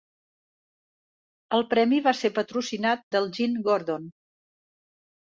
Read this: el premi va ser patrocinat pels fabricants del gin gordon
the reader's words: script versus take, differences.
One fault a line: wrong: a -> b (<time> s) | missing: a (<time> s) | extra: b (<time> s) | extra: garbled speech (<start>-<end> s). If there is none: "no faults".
missing: pels fabricants (3.0 s)